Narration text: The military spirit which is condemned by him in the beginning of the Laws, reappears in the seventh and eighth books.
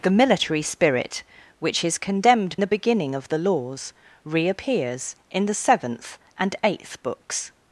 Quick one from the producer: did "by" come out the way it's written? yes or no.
no